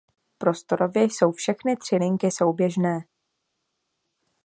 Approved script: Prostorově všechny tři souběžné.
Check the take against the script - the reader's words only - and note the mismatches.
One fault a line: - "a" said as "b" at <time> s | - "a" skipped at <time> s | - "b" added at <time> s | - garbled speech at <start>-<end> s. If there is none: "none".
- "jsou" added at 1.0 s
- "linky" added at 1.9 s